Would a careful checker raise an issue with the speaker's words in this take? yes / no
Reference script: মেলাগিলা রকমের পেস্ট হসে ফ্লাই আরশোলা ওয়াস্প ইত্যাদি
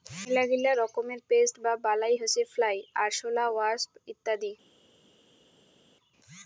yes